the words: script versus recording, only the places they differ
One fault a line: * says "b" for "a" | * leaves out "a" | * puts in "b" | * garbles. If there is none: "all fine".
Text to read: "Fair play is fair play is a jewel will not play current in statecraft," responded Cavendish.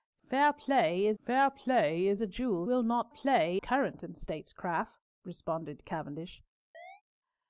all fine